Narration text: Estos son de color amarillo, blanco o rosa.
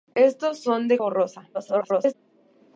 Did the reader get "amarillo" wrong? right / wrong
wrong